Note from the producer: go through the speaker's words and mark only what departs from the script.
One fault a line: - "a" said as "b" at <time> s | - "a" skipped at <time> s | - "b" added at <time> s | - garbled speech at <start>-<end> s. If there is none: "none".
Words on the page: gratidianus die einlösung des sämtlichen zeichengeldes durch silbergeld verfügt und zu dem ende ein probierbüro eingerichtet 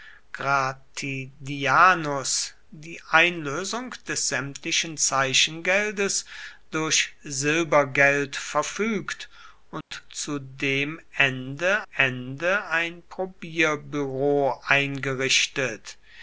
- "ende" added at 11.9 s